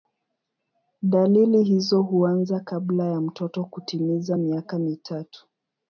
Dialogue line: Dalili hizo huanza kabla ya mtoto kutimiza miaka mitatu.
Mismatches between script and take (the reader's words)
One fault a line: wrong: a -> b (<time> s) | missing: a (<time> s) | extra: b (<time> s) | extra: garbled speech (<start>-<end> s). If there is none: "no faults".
no faults